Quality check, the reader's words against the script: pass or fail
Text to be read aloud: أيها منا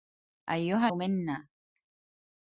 pass